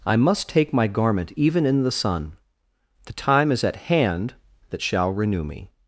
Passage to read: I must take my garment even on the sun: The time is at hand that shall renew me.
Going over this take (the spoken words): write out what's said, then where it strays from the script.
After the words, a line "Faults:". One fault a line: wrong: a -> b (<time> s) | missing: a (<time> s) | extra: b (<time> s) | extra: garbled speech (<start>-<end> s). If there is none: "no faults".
I must take my garment even in the sun: The time is at hand that shall renew me.
Faults:
wrong: on -> in (1.6 s)